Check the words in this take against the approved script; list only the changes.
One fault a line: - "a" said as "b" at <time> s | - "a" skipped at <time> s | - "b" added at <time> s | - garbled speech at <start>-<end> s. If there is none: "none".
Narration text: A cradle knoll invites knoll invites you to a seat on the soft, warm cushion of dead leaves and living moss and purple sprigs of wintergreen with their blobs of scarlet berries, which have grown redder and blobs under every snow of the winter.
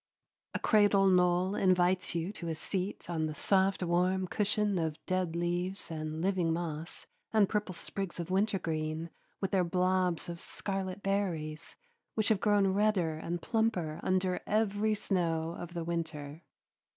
- "knoll invites" skipped at 2.1 s
- "blobs" said as "plumper" at 13.4 s